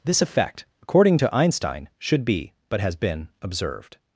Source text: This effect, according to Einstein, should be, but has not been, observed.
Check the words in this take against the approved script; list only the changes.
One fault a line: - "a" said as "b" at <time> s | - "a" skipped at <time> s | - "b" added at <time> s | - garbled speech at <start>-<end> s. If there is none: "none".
- "not" skipped at 2.9 s